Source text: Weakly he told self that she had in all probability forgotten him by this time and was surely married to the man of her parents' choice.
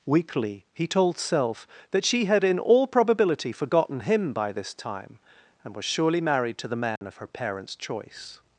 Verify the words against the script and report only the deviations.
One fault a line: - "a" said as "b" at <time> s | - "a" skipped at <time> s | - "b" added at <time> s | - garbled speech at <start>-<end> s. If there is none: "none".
none